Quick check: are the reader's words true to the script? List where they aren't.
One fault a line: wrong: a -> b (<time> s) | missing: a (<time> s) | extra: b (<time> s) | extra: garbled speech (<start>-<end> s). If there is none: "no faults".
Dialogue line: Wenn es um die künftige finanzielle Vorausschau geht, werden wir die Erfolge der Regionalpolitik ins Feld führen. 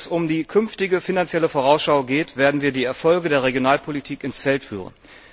no faults